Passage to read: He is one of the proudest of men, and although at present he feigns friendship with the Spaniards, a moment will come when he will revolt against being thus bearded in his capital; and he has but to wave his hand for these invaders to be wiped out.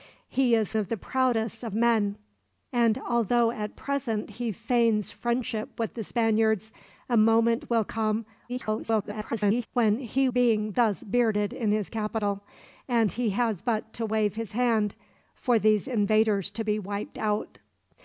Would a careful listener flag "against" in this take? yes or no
yes